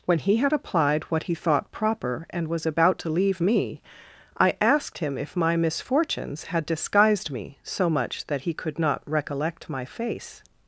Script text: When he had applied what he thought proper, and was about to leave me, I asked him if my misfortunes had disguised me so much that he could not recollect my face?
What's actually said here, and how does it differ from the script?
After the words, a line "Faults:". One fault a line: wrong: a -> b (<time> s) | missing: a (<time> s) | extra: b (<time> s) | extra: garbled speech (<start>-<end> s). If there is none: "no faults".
When he had applied what he thought proper, and was about to leave me, I asked him if my misfortunes had disguised me so much that he could not recollect my face?
Faults:
no faults